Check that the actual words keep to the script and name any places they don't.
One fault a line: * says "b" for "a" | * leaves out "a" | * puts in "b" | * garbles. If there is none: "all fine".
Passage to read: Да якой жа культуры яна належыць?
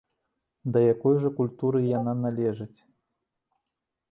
all fine